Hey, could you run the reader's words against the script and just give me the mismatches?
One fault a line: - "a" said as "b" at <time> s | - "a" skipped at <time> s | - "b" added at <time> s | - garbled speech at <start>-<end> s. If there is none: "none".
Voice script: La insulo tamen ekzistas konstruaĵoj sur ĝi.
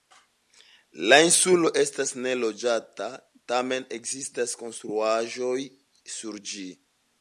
- "estas neloĝata" added at 1.8 s